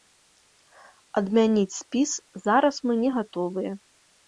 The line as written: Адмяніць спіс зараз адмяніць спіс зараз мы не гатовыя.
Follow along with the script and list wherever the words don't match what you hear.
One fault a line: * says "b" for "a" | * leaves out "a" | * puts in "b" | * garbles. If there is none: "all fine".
* leaves out "адмяніць спіс зараз"